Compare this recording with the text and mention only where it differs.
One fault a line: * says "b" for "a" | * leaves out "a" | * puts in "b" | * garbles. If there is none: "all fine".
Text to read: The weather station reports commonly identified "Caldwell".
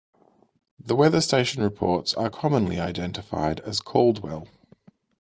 * puts in "are"
* puts in "as"